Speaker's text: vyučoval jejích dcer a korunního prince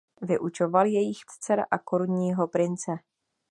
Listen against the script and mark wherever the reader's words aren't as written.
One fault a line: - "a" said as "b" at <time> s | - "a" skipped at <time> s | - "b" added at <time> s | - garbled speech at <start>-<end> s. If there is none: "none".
none